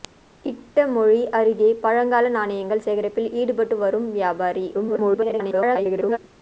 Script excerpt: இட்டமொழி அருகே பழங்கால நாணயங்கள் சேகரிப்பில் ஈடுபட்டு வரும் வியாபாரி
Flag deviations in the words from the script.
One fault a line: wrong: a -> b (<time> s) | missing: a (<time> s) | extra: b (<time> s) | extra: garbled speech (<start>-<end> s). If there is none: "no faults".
extra: garbled speech (4.7-6.2 s)